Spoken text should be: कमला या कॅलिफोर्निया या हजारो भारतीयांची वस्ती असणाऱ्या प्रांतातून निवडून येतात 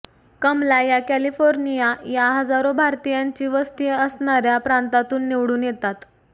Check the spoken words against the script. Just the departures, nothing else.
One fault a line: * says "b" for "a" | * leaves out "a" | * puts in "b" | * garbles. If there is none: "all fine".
all fine